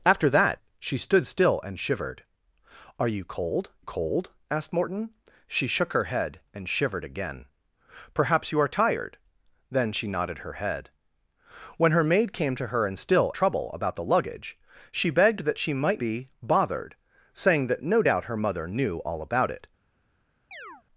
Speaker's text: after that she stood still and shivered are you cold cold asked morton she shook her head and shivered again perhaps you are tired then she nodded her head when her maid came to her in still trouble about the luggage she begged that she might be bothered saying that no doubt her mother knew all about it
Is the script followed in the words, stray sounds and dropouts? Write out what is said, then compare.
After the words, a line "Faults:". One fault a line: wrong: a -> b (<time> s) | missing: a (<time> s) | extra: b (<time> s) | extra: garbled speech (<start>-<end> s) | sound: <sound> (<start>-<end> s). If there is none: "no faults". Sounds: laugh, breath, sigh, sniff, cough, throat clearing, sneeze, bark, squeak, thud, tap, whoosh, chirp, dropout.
after that she stood still and shivered are you cold cold asked morton she shook her head and shivered again perhaps you are tired then she nodded her head when her maid came to her in still trouble about the luggage she begged that she might be bothered saying that no doubt her mother knew all about it
Faults:
sound: chirp (20.5-20.8 s)